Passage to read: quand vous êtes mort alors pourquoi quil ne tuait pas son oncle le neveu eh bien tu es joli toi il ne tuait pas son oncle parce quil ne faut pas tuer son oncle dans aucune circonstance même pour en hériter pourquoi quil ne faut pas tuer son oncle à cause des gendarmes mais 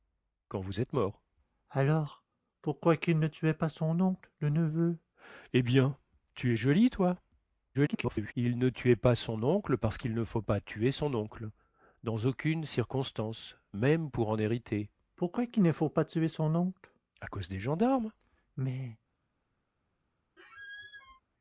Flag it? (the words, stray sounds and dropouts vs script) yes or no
yes